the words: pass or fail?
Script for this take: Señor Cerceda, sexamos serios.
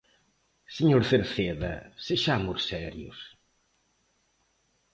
pass